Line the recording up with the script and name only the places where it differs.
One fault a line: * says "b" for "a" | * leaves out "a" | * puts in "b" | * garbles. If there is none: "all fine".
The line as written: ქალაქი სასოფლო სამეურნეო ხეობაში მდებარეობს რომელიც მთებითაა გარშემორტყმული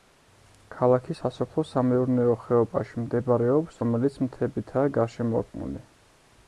all fine